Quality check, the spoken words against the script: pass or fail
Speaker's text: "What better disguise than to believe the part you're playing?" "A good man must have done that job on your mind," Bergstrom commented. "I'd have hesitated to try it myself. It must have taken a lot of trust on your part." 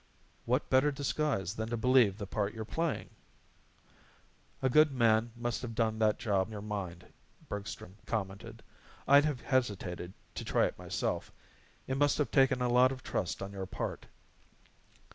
fail